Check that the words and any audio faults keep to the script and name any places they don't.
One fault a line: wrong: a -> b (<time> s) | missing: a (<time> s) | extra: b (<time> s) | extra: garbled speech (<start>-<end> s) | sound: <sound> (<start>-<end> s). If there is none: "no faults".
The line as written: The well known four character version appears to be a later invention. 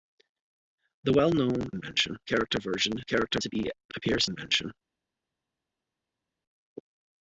wrong: four -> invention (1.7 s)
wrong: appears -> character (3.0 s)
wrong: later -> appears (4.0 s)